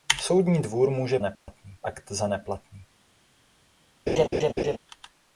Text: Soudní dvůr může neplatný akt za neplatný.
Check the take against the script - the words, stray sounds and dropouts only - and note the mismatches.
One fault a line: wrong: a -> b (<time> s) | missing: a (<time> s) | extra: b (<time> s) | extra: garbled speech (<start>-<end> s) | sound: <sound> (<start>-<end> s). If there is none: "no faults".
sound: dropout (1.3-1.5 s)
sound: laugh (4.1-4.8 s)